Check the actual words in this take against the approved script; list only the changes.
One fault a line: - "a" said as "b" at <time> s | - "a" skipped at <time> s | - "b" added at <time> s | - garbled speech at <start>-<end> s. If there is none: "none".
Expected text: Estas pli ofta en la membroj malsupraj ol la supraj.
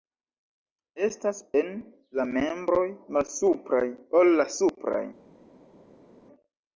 - "pli ofta" skipped at 1.4 s